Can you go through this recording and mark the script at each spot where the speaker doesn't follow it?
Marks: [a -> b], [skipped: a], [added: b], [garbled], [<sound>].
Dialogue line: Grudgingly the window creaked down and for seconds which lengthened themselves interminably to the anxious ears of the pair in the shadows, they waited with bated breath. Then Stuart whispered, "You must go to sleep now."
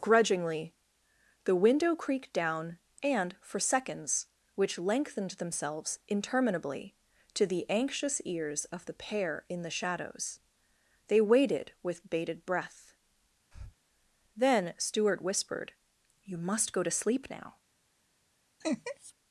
Grudgingly the window creaked down and for seconds which lengthened themselves interminably to the anxious ears of the pair in the shadows, they waited with bated breath. [breath] Then Stuart whispered, "You must go to sleep now." [laugh]